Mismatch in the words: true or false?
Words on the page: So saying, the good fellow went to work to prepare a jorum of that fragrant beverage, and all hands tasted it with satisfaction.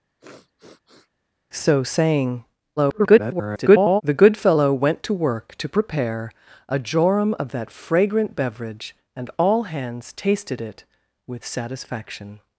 true